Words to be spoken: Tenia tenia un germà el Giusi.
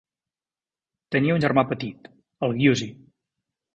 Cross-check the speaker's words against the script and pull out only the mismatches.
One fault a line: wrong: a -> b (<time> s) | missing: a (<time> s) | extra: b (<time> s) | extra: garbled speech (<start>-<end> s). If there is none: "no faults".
missing: tenia (1.4 s)
extra: petit (1.7 s)